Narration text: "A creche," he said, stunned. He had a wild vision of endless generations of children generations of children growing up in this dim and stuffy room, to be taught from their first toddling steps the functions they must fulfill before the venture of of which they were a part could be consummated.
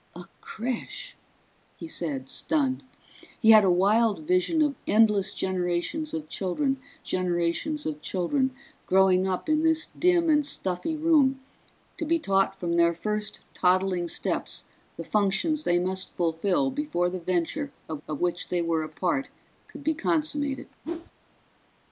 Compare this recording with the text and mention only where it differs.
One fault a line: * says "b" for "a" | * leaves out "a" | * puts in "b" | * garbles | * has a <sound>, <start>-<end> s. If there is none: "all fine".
* has a whoosh, 20.8-21.1 s